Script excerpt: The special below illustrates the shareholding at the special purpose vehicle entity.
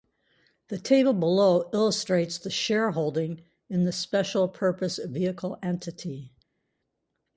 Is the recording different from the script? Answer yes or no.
yes